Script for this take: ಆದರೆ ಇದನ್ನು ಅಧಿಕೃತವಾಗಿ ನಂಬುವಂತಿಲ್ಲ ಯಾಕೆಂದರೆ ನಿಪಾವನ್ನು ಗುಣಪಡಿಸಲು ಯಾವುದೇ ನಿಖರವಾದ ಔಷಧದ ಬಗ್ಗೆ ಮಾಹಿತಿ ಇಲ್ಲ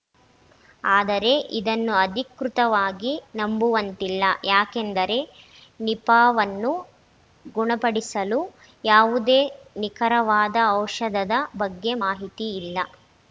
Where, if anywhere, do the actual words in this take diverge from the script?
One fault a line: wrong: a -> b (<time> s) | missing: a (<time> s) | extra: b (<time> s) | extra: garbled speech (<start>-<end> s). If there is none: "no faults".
no faults